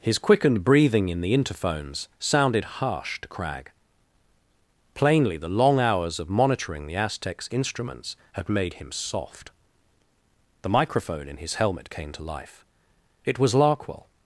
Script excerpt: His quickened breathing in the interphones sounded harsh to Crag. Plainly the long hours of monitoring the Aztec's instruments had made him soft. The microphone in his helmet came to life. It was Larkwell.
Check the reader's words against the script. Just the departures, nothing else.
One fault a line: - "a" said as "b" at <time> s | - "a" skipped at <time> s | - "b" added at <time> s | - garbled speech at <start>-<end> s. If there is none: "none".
none